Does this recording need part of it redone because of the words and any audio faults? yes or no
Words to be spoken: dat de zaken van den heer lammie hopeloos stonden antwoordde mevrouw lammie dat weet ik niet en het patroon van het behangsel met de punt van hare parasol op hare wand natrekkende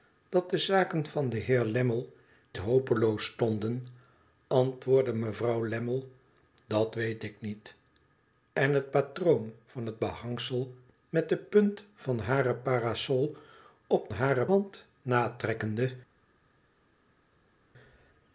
no